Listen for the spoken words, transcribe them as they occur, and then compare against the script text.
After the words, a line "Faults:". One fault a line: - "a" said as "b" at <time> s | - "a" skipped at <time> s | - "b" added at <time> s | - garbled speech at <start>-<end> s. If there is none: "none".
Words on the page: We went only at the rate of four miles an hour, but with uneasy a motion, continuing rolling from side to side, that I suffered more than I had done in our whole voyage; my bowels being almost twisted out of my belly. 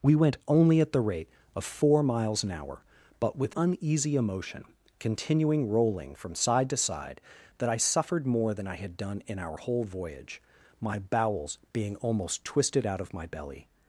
We went only at the rate of four miles an hour, but with uneasy a motion, continuing rolling from side to side, that I suffered more than I had done in our whole voyage; my bowels being almost twisted out of my belly.
Faults:
none